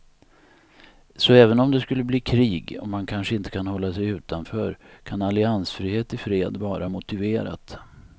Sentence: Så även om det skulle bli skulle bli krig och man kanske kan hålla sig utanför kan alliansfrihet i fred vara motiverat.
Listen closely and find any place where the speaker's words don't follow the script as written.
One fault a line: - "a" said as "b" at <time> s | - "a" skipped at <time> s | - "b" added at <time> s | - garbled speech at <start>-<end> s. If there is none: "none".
- "skulle bli" skipped at 2.2 s
- "inte" added at 3.4 s